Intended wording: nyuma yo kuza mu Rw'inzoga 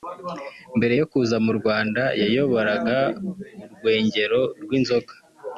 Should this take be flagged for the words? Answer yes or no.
yes